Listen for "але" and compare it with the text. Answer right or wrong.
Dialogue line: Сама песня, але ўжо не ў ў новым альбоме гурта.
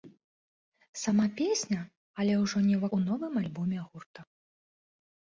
right